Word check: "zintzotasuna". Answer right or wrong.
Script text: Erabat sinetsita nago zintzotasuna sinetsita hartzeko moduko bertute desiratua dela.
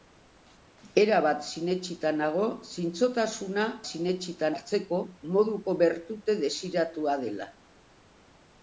right